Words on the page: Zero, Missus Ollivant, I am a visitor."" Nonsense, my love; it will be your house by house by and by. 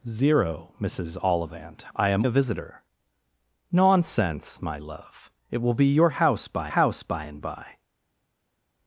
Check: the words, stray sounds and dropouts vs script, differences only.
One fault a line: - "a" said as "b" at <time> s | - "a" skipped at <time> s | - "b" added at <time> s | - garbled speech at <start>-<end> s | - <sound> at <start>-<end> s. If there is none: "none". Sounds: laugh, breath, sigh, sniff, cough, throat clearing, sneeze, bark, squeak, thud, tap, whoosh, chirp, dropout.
none